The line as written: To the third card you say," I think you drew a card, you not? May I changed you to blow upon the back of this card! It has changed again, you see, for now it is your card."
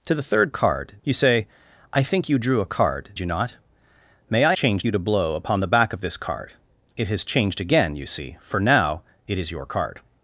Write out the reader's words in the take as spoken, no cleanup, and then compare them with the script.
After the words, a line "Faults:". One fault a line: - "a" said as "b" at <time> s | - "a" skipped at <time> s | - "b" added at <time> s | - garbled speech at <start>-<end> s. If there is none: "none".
To the third card you say," I think you drew a card, you not? May I changed you to blow upon the back of this card! It has changed again, you see, for now it is your card."
Faults:
none